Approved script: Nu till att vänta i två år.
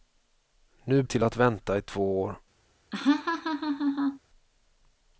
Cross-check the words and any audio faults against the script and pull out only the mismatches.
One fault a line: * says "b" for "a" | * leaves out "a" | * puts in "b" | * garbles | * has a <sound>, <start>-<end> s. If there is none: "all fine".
* has a laugh, 2.9-4.2 s